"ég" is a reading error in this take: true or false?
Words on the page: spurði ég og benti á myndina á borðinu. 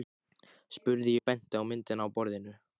true